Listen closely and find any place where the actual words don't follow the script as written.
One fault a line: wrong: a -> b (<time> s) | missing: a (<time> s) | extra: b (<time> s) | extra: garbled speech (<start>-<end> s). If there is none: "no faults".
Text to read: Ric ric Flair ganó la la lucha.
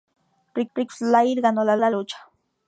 no faults